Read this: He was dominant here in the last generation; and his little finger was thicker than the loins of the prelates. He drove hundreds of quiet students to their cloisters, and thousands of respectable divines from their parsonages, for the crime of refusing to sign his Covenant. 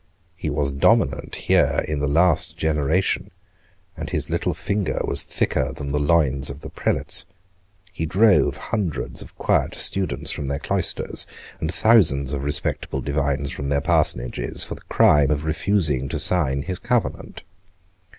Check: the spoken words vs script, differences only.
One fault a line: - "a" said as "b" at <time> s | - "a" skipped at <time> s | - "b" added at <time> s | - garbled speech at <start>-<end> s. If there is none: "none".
- "to" said as "from" at 10.3 s